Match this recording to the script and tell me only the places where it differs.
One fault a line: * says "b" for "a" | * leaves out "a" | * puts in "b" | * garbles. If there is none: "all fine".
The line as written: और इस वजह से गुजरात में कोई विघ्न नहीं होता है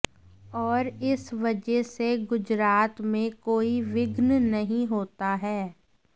all fine